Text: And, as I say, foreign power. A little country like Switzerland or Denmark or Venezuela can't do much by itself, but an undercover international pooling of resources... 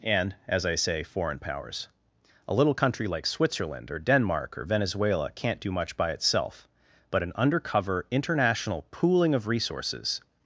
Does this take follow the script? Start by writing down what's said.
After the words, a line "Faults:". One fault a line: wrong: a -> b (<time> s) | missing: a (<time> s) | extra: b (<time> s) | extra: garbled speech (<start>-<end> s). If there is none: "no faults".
And, as I say, foreign powers. A little country like Switzerland or Denmark or Venezuela can't do much by itself, but an undercover international pooling of resources...
Faults:
wrong: power -> powers (1.4 s)